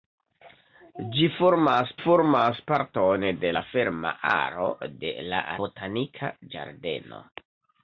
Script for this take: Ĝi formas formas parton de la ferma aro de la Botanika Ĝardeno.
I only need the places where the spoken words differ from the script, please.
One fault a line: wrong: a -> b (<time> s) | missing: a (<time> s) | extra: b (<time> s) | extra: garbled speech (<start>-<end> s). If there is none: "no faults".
no faults